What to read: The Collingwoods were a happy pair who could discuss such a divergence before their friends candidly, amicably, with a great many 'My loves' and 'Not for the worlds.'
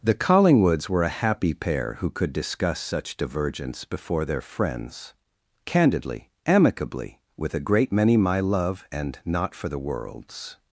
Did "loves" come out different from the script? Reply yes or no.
yes